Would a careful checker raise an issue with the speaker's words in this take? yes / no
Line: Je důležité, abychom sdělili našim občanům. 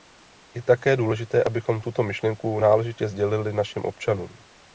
yes